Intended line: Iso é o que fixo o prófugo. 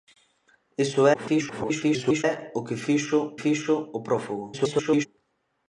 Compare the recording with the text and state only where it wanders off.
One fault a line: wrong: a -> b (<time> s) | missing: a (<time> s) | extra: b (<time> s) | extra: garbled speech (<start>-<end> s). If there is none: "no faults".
extra: garbled speech (1.1-2.2 s)
extra: fixo (3.4 s)
extra: garbled speech (4.5-5.1 s)